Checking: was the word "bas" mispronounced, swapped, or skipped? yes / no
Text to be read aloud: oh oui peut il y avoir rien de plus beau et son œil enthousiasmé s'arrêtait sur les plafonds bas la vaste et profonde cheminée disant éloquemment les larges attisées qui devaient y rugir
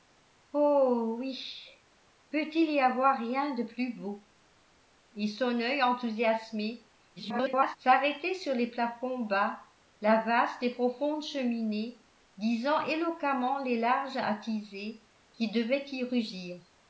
no